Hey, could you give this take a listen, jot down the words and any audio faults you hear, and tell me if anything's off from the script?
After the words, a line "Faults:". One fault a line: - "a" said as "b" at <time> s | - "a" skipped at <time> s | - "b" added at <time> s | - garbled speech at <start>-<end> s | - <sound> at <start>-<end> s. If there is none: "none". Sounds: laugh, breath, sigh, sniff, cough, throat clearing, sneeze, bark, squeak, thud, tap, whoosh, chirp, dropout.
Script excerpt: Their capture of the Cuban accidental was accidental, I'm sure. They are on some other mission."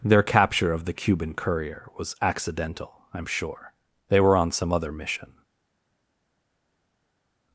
Their capture of the Cuban courier was accidental, I'm sure. They were on some other mission."
Faults:
- "accidental" said as "courier" at 1.3 s
- "are" said as "were" at 4.2 s